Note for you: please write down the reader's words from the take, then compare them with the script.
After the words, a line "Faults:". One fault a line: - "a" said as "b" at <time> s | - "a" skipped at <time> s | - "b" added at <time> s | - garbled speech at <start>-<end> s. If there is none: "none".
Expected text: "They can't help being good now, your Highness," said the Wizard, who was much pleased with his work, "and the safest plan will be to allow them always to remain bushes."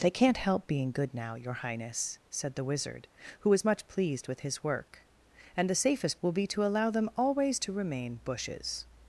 "They can't help being good now, your Highness," said the Wizard, who was much pleased with his work, "and the safest will be to allow them always to remain bushes."
Faults:
- "plan" skipped at 6.2 s